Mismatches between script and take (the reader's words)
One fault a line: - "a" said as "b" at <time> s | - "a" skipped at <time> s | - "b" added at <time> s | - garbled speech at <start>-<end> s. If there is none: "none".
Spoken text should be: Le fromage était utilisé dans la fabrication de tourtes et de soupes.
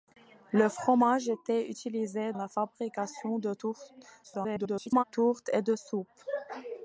- "dans" skipped at 2.3 s
- garbled speech at 4.2-5.0 s